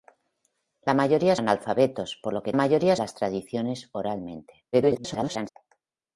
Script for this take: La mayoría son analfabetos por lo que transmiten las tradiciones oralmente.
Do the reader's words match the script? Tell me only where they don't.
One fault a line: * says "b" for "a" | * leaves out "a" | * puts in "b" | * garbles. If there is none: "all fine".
* leaves out "son"
* says "mayoría" for "transmiten"
* garbles